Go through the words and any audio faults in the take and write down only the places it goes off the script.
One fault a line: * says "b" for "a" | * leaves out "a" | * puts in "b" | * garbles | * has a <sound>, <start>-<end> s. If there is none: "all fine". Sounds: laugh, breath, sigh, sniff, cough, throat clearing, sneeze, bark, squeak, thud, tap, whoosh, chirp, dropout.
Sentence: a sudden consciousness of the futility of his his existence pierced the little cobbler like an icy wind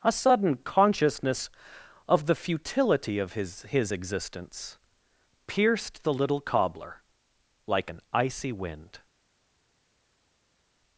all fine